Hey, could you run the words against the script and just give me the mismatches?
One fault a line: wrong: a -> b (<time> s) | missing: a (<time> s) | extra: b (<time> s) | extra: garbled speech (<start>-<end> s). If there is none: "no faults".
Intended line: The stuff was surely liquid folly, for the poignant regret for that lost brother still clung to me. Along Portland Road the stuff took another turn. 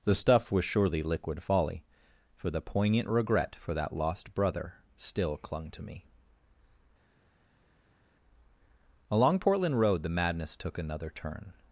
wrong: stuff -> madness (10.1 s)